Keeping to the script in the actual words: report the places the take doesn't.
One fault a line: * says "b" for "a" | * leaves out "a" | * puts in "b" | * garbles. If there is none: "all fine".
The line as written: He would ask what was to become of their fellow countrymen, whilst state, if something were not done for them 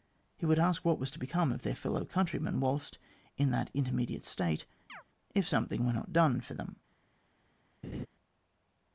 * puts in "in that intermediate"